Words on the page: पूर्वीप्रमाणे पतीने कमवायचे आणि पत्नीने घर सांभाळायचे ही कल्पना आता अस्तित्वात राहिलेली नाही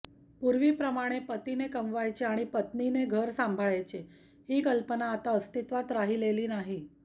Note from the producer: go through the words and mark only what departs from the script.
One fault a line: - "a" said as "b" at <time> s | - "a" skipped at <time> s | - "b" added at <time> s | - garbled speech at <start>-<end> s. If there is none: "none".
none